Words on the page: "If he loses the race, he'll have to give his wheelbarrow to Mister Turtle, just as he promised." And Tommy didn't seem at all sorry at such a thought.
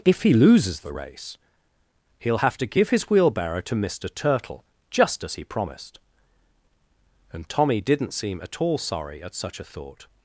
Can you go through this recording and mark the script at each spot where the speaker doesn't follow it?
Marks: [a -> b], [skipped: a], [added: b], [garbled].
"If he loses the race, he'll have to give his wheelbarrow to Mister Turtle, just as he promised." And Tommy didn't seem at all sorry at such a thought.